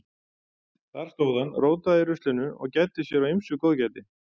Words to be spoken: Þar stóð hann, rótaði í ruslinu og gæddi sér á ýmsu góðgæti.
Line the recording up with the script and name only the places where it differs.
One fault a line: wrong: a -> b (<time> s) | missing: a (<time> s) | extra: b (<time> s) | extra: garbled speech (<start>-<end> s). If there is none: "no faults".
no faults